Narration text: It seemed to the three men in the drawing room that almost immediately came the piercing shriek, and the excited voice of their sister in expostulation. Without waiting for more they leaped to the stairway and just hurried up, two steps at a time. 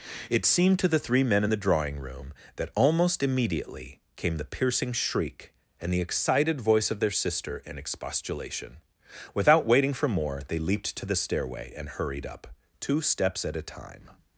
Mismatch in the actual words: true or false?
true